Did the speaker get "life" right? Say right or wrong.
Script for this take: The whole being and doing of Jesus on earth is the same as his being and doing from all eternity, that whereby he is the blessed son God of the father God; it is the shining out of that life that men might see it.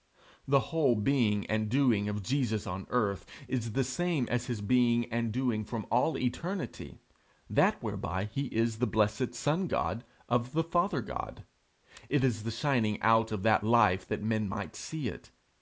right